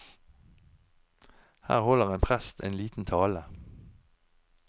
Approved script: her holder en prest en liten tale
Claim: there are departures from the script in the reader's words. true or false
false